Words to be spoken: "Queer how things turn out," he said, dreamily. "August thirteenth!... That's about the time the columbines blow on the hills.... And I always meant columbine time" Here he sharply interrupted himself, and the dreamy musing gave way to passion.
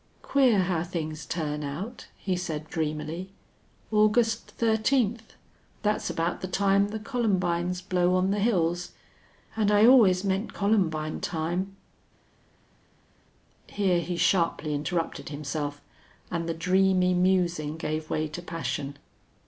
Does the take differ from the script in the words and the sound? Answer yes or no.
no